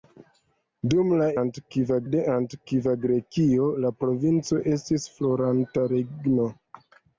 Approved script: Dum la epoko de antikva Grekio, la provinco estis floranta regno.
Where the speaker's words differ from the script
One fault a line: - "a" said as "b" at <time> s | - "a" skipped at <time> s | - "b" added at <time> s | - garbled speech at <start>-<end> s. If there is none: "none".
- "epoko" said as "antikva" at 1.4 s